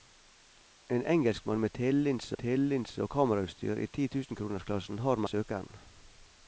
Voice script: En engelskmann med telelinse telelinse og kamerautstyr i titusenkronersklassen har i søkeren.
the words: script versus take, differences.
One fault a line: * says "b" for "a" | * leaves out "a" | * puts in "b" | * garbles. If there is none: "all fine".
all fine